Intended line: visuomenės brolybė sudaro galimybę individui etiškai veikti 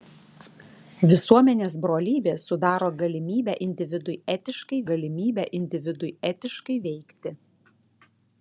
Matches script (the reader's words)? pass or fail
fail